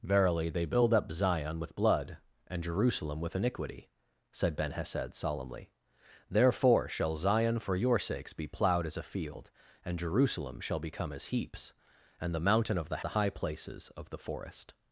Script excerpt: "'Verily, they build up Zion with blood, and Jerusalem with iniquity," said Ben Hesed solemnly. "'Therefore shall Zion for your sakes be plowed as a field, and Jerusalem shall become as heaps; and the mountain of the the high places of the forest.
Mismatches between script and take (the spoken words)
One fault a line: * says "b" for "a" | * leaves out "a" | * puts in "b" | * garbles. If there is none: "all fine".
all fine